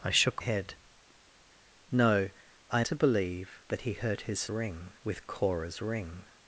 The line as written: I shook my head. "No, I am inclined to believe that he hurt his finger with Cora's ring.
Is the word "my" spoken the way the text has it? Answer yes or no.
no